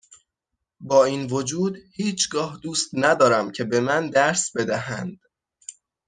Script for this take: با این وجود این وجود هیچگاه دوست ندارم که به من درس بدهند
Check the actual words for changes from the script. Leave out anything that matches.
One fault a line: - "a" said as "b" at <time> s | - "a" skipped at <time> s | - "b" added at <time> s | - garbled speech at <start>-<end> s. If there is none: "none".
- "این وجود" skipped at 1.8 s